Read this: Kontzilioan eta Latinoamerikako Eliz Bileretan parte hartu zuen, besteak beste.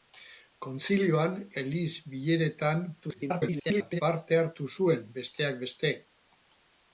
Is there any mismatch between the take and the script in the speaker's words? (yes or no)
yes